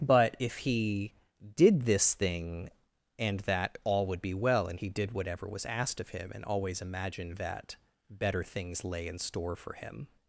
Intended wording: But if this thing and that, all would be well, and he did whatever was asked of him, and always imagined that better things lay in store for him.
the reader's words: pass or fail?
fail